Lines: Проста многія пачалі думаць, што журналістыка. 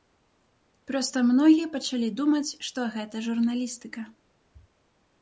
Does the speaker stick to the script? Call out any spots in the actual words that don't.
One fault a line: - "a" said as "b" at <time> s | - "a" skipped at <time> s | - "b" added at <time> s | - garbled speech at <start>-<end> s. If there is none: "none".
- "гэта" added at 3.0 s